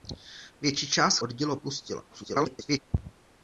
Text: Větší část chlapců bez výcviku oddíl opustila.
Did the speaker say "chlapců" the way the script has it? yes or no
no